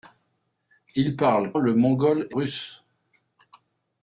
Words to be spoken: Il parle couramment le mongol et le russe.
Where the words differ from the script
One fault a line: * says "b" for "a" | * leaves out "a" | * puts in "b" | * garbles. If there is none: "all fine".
* leaves out "couramment"
* leaves out "le"